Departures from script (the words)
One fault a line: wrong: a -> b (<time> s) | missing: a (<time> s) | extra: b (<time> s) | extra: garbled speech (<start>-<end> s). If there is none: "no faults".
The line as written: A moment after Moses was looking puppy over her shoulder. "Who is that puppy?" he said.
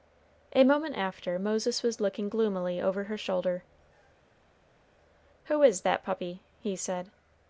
wrong: puppy -> gloomily (2.3 s)